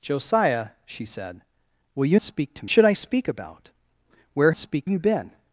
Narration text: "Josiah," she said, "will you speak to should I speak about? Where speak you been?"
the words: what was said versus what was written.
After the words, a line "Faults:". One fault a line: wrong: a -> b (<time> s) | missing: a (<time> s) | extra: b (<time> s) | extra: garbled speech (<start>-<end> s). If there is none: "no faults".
"Josiah," she said, "will you speak to should I speak about? Where speak you been?"
Faults:
no faults